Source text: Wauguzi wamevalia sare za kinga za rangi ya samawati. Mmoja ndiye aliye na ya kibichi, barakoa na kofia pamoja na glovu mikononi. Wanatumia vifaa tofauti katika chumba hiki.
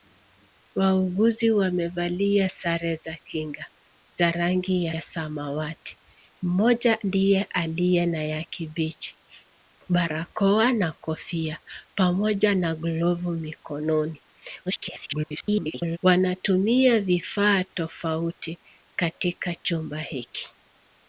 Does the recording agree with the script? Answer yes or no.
no